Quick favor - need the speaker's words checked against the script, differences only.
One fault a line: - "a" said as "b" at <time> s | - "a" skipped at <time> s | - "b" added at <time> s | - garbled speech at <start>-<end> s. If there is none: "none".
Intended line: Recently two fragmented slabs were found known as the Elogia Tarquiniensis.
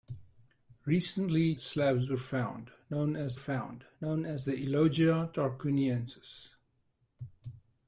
- "two fragmented slabs were" said as "slabs were found known as" at 1.6 s